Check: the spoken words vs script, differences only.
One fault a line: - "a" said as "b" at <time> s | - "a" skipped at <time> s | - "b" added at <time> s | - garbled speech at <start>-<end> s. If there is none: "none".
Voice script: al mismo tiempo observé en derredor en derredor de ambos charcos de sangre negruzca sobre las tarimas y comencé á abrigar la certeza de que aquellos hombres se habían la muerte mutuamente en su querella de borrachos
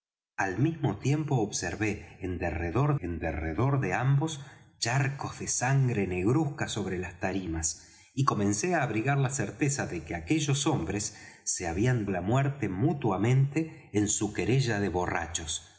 none